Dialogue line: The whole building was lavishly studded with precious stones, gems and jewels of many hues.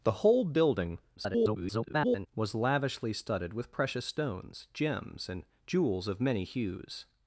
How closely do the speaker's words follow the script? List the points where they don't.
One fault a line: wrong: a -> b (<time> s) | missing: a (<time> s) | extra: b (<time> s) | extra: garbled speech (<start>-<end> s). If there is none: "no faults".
extra: garbled speech (1.2-2.3 s)